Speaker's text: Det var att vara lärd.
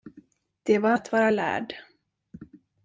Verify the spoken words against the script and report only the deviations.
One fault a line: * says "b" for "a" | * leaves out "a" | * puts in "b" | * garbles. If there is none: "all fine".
all fine